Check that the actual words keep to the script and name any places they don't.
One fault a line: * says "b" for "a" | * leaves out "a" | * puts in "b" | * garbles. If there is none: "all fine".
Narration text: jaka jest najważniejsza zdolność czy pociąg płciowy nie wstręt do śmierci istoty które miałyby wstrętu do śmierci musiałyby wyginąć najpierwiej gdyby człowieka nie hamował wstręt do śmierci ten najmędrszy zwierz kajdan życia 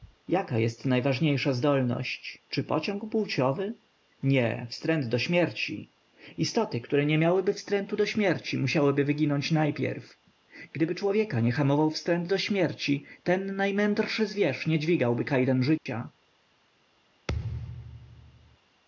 * puts in "nie"
* puts in "nie dźwigałby"